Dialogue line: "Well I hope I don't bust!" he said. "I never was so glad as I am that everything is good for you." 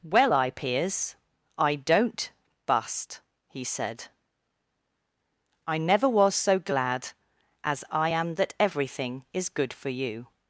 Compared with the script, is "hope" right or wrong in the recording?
wrong